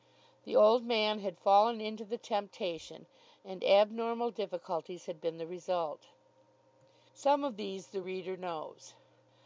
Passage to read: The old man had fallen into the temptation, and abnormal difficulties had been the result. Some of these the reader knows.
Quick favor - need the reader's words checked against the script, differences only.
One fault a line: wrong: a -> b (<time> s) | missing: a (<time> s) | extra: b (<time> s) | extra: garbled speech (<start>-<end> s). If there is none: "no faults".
no faults